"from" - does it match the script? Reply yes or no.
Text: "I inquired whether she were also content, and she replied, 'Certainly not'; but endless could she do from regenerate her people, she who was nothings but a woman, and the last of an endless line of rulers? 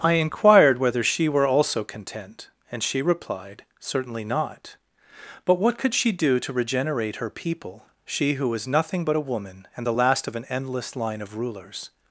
no